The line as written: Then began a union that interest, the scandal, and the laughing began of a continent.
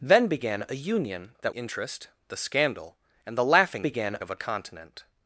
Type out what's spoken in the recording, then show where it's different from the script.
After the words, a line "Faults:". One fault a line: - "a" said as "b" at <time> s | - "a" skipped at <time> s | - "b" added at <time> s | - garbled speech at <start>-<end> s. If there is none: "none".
Then began a union that interest, the scandal, and the laughing began of a continent.
Faults:
none